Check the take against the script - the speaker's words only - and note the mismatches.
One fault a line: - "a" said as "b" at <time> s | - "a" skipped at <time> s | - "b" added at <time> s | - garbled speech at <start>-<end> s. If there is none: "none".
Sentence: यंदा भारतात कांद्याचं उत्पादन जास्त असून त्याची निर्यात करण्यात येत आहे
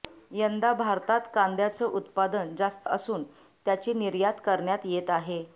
none